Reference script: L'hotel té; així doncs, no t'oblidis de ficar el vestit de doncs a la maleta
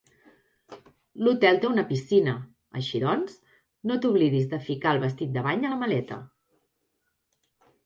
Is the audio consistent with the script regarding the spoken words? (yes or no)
no